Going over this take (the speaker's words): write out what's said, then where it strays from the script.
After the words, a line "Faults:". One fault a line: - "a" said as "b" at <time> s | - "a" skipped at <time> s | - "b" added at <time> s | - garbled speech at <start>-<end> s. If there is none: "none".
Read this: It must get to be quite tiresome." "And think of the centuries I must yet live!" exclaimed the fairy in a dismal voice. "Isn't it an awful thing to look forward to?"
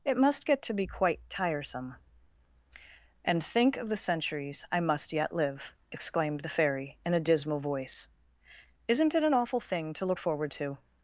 It must get to be quite tiresome." "And think of the centuries I must yet live!" exclaimed the fairy in a dismal voice. "Isn't it an awful thing to look forward to?"
Faults:
none